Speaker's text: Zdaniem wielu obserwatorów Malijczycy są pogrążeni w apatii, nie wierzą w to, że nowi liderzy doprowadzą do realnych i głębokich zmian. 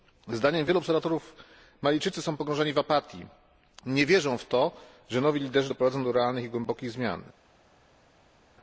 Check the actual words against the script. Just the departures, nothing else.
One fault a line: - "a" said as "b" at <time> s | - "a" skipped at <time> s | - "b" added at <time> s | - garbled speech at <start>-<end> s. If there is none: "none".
none